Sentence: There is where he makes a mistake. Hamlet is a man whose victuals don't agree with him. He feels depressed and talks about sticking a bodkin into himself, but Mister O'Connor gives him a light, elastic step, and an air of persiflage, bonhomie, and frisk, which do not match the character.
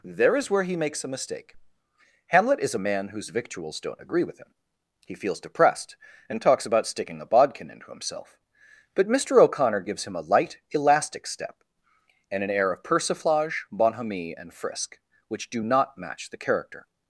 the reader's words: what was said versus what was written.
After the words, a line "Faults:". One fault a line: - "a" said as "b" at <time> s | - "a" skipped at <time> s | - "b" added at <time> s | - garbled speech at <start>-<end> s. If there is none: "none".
There is where he makes a mistake. Hamlet is a man whose victuals don't agree with him. He feels depressed and talks about sticking a bodkin into himself, but Mister O'Connor gives him a light, elastic step, and an air of persiflage, bonhomie, and frisk, which do not match the character.
Faults:
none